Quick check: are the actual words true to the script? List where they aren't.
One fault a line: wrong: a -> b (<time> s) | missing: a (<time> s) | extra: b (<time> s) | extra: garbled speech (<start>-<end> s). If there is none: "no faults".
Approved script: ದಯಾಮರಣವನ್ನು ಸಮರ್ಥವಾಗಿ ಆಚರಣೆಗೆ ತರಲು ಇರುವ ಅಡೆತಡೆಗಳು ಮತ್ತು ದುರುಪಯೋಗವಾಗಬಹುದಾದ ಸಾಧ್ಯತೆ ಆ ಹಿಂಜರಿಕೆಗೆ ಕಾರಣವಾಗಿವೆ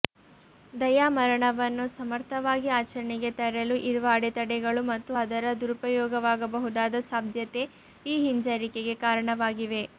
extra: ಅದರ (5.2 s)
wrong: ಆ -> ಈ (8.1 s)